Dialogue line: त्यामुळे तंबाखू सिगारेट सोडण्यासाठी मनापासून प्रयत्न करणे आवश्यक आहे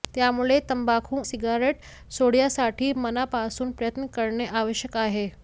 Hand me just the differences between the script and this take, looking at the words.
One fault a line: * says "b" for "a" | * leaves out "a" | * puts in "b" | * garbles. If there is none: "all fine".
all fine